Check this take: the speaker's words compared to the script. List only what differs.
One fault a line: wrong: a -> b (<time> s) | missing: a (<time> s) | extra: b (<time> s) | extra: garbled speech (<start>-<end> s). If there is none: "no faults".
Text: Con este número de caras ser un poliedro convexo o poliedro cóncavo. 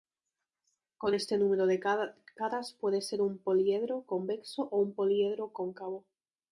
extra: puede (2.7 s)
extra: un (4.8 s)